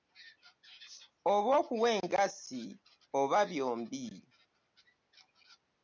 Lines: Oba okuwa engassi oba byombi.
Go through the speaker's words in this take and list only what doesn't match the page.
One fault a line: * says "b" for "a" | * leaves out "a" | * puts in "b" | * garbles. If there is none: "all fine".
all fine